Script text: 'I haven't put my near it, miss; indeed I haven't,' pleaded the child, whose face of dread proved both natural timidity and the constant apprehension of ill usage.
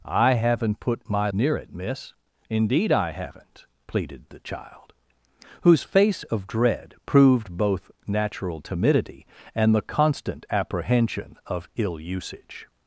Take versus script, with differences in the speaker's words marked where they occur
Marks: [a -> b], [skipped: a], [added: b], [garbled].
'I haven't put my near it, miss; indeed I haven't,' pleaded the child, whose face of dread proved both natural timidity and the constant apprehension of ill usage.